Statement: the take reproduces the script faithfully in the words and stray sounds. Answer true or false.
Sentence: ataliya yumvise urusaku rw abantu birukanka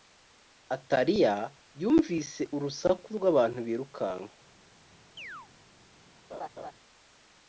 false